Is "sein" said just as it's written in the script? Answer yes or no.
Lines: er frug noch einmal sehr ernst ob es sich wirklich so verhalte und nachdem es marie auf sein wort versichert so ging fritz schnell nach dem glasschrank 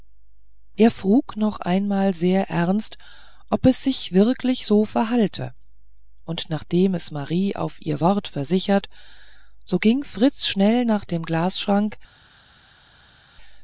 no